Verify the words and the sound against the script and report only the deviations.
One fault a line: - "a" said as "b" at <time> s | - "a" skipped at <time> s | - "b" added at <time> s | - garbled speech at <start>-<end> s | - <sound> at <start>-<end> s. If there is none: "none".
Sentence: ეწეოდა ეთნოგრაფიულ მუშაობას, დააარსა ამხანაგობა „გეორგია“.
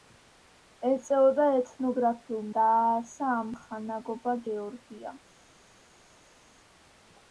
- "მუშაობას" skipped at 2.5 s